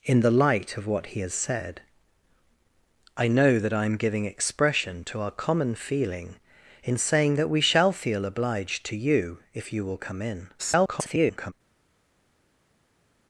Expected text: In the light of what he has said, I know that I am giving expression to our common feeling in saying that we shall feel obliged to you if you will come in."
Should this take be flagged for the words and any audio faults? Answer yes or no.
yes